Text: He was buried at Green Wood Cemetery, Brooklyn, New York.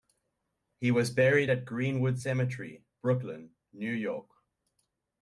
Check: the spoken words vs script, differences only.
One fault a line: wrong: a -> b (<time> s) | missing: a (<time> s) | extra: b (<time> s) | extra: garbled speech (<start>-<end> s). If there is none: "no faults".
no faults